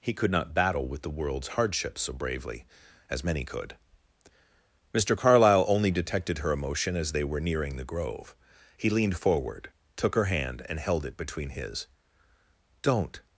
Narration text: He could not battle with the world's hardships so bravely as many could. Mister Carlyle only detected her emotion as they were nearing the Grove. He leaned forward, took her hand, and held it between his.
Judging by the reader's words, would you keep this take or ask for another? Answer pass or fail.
fail